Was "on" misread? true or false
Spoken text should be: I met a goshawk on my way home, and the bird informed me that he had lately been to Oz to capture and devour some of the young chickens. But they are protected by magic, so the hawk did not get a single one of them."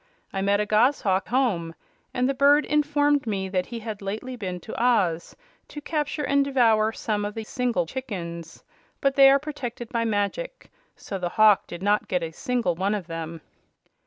true